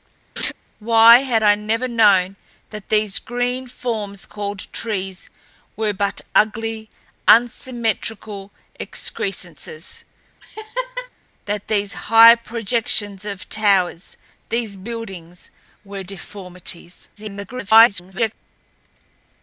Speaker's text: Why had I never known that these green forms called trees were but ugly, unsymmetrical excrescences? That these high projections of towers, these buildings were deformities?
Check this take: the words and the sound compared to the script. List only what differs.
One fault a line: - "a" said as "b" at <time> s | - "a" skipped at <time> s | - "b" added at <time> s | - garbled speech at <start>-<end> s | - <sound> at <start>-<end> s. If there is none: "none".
- laugh at 0.4-0.5 s
- laugh at 10.4-11.1 s
- garbled speech at 17.2-18.3 s